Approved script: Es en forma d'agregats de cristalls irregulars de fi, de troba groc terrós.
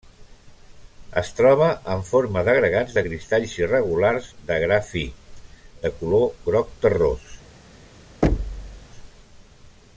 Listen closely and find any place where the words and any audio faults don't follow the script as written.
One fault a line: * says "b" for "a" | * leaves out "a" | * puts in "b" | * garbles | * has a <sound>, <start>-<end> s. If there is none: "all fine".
* puts in "troba"
* puts in "gra"
* says "color" for "troba"
* has a thud, 8.2-8.9 s